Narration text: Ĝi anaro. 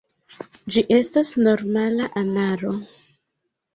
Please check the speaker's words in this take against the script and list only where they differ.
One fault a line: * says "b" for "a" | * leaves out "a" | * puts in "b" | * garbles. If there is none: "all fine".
* puts in "estas normala"